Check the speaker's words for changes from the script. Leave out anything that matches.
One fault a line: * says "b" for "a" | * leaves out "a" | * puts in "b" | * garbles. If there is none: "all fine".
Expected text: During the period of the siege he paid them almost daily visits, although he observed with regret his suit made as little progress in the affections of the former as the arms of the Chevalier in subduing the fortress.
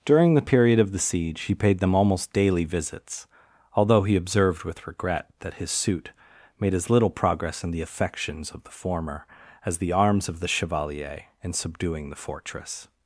* puts in "that"